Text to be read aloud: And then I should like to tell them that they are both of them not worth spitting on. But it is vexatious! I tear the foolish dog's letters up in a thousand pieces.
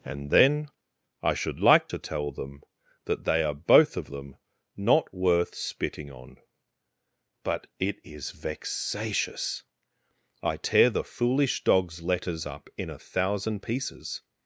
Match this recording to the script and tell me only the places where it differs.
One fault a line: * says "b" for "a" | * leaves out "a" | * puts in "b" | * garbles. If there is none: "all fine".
all fine